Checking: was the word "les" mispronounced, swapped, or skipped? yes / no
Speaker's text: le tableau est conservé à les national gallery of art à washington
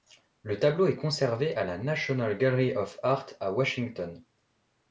yes